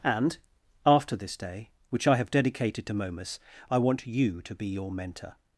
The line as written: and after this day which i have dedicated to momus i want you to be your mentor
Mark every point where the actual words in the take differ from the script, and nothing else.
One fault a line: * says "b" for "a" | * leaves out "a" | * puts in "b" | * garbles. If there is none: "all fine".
all fine